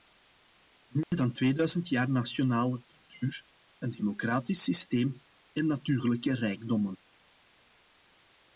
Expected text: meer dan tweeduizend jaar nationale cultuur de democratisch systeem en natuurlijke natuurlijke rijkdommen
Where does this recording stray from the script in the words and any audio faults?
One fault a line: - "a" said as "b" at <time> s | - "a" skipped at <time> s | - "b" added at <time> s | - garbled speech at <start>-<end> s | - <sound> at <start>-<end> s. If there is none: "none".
- dropout at 1.0-1.1 s
- "de" said as "een" at 3.8 s
- "natuurlijke" skipped at 6.3 s